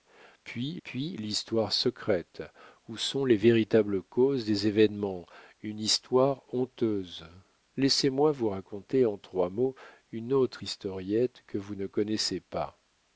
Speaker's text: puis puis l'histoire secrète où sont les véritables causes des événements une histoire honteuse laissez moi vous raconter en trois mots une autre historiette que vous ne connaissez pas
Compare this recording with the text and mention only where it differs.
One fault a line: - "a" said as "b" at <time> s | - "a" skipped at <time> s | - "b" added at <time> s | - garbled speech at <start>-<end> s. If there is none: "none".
none